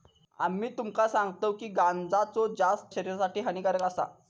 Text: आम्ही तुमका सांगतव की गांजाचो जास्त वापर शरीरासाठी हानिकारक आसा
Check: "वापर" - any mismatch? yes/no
yes